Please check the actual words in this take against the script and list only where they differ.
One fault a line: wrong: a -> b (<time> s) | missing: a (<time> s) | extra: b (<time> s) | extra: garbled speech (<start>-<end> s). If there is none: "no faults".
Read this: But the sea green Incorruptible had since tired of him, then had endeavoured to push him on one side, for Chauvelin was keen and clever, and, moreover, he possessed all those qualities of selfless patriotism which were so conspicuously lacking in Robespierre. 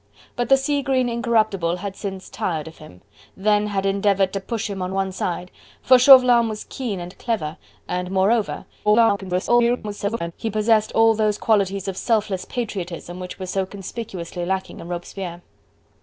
extra: garbled speech (8.8-10.3 s)